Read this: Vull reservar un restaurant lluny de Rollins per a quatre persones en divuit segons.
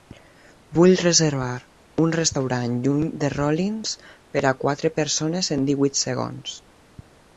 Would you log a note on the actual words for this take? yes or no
no